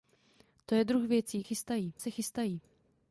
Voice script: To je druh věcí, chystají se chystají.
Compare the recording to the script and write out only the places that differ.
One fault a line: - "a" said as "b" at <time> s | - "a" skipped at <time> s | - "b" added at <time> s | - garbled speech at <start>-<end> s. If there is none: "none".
none